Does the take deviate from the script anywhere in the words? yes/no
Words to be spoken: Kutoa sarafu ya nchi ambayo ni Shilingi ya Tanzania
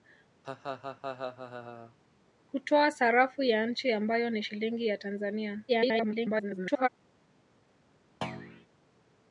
yes